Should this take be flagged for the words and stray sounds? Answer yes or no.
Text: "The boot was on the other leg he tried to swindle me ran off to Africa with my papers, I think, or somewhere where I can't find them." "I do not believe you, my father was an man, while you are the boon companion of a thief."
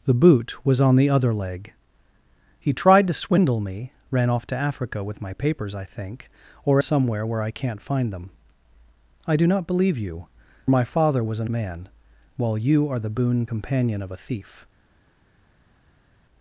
no